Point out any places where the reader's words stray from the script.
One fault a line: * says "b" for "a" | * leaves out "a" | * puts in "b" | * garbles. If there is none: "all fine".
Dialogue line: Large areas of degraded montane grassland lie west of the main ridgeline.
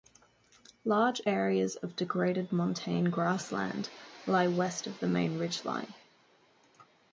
all fine